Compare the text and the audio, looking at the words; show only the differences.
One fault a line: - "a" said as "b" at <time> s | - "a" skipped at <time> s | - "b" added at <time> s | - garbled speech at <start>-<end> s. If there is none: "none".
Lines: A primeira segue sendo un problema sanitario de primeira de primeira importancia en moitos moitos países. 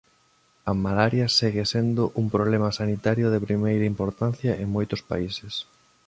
- "primeira" said as "malaria" at 0.8 s
- "de primeira" skipped at 3.9 s
- "moitos" skipped at 5.0 s